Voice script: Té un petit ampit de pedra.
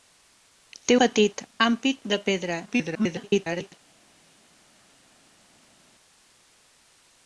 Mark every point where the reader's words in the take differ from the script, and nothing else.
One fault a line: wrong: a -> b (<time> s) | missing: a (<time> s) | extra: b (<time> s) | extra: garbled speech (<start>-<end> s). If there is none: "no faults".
missing: un (0.9 s)
extra: garbled speech (2.7-3.7 s)